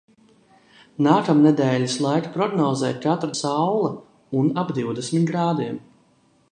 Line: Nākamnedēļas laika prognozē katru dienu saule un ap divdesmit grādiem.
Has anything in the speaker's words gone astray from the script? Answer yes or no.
yes